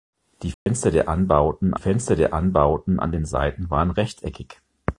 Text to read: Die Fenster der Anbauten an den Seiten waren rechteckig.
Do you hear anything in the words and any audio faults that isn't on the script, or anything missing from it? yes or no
yes